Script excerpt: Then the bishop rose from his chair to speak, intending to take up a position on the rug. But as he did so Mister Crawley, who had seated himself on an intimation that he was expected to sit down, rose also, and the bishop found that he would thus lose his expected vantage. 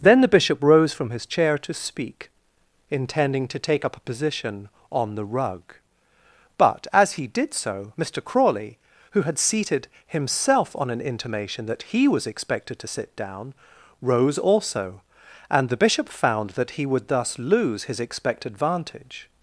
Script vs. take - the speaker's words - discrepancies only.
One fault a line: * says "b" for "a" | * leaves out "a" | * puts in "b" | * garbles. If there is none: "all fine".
all fine